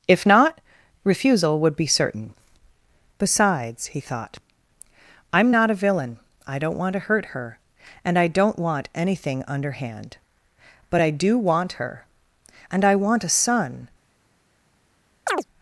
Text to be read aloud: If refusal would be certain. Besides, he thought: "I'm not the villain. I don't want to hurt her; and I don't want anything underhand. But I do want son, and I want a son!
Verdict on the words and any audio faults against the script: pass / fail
fail